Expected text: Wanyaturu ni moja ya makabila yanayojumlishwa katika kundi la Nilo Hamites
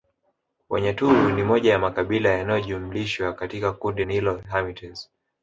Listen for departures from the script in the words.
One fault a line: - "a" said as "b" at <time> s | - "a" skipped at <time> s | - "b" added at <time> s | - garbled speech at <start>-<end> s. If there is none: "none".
- "la" skipped at 4.0 s